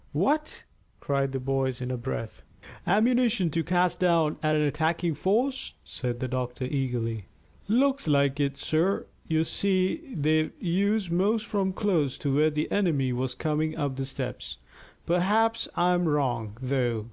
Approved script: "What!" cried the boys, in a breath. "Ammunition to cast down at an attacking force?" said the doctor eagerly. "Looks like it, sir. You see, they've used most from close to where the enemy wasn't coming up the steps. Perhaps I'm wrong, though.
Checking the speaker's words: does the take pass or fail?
fail